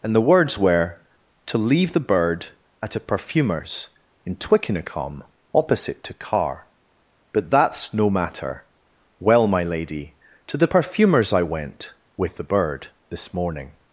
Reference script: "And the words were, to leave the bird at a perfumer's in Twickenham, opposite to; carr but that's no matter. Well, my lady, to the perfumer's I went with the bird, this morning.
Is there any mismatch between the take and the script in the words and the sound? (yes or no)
no